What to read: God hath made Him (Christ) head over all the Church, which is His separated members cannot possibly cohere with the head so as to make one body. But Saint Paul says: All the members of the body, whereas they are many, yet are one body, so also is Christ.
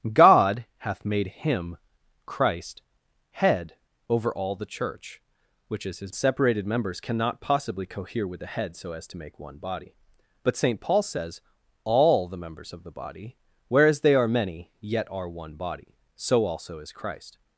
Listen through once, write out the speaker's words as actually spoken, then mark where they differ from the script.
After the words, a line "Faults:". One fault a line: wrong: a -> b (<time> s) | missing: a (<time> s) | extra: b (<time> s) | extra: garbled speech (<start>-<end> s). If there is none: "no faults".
God hath made Him (Christ) head over all the Church, which is His separated members cannot possibly cohere with the head so as to make one body. But Saint Paul says: All the members of the body, whereas they are many, yet are one body, so also is Christ.
Faults:
no faults